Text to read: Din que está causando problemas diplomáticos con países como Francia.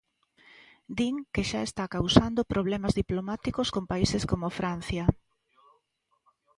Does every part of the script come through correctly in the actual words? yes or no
no